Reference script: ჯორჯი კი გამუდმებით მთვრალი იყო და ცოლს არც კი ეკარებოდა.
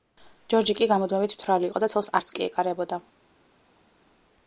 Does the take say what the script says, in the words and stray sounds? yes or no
yes